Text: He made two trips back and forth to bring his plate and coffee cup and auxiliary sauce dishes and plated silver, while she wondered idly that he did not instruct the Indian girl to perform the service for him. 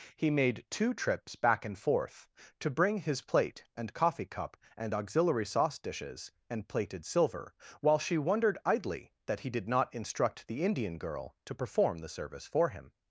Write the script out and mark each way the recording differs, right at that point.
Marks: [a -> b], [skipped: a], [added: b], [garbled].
He made two trips back and forth to bring his plate and coffee cup and auxiliary sauce dishes and plated silver, while she wondered idly that he did not instruct the Indian girl to perform the service for him.